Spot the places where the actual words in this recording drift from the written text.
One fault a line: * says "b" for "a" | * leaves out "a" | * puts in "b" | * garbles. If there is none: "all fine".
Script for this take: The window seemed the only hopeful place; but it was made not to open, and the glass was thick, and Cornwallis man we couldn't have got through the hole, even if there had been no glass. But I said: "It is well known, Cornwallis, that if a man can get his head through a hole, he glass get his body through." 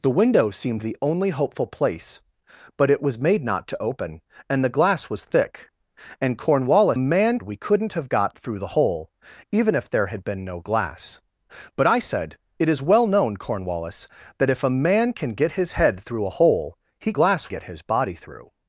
all fine